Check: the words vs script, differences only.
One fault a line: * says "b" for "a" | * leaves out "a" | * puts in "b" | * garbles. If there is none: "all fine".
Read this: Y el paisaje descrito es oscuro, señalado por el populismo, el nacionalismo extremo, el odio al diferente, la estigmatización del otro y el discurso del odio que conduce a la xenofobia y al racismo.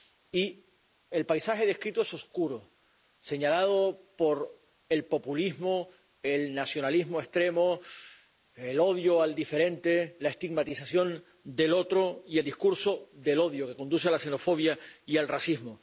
all fine